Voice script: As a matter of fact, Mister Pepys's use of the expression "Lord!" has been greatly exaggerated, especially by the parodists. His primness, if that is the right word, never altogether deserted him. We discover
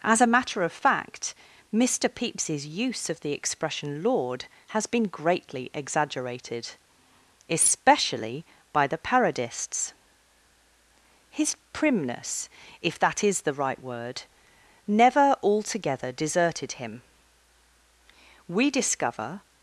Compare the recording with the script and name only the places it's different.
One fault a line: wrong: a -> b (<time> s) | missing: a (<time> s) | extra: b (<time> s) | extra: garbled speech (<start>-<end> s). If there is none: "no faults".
no faults